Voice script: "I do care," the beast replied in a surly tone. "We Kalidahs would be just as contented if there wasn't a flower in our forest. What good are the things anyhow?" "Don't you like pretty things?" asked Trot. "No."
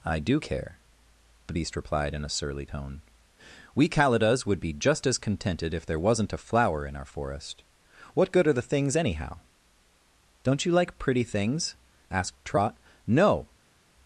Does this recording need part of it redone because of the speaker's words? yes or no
no